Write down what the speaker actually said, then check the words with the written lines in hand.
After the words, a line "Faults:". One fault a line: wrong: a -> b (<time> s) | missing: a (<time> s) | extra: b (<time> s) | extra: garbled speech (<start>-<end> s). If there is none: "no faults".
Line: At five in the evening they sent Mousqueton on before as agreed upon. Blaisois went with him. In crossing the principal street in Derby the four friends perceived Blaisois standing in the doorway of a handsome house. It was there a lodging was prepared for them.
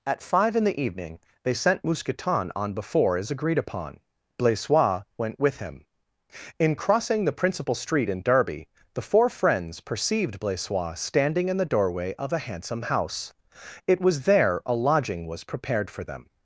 At five in the evening they sent Mousqueton on before as agreed upon. Blaisois went with him. In crossing the principal street in Derby the four friends perceived Blaisois standing in the doorway of a handsome house. It was there a lodging was prepared for them.
Faults:
no faults